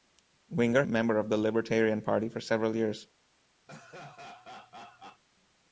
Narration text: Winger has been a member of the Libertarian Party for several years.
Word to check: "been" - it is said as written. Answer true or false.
false